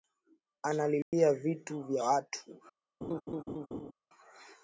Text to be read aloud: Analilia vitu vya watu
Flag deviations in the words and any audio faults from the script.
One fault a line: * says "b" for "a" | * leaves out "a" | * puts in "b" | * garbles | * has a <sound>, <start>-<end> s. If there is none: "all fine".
* has a dropout, 1.0-1.1 s
* has a laugh, 3.0-3.9 s